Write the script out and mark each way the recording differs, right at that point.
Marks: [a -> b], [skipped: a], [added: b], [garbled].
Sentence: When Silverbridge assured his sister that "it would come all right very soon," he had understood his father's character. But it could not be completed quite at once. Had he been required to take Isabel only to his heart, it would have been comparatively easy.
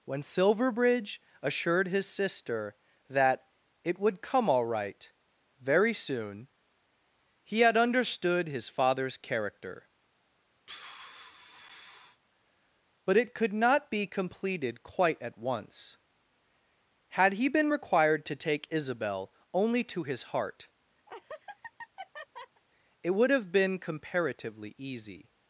When Silverbridge assured his sister that "it would come all right very soon," he had understood his father's character. But it could not be completed quite at once. Had he been required to take Isabel only to his heart, it would have been comparatively easy.